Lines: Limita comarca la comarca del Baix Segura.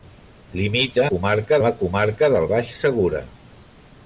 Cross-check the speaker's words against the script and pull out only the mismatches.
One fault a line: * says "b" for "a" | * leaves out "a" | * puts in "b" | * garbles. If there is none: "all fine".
all fine